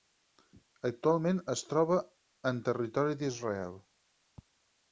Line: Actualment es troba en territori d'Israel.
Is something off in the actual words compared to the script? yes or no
no